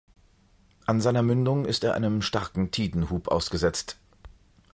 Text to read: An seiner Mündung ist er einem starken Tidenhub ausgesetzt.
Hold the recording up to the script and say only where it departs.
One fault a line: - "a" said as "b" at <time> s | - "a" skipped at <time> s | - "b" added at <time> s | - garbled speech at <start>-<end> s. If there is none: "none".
none